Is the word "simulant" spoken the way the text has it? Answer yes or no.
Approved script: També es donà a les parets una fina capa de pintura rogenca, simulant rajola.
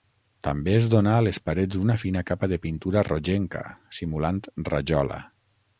yes